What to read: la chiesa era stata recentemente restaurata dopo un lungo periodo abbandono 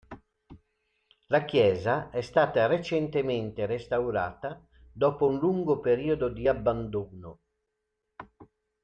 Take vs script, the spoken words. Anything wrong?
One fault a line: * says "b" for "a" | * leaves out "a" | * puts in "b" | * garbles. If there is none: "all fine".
* says "è" for "era"
* puts in "di"